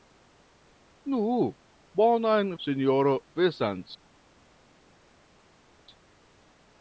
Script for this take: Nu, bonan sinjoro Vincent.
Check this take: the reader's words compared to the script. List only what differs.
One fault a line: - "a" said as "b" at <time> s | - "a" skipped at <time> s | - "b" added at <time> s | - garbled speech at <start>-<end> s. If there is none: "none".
none